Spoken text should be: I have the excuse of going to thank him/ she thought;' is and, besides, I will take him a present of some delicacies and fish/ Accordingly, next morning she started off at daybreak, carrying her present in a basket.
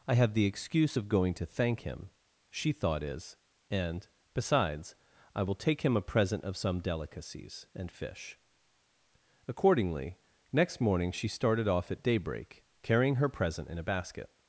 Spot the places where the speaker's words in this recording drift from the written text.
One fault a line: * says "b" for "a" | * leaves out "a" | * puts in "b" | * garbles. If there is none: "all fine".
all fine